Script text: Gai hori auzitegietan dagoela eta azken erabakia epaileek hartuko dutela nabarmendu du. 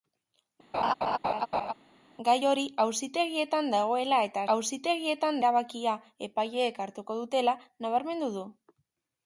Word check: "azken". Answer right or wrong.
wrong